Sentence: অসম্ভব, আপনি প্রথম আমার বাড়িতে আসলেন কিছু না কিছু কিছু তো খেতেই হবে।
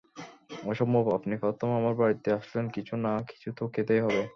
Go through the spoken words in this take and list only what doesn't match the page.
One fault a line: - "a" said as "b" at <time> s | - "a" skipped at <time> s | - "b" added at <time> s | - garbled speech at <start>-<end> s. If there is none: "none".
- "কিছু" skipped at 3.5 s